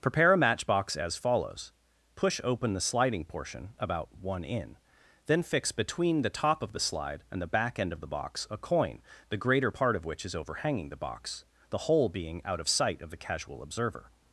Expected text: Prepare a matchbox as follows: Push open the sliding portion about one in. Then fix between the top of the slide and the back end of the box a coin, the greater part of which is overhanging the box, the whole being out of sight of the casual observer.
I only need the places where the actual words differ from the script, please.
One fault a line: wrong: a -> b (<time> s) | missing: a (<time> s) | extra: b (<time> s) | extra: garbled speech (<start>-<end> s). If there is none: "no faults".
no faults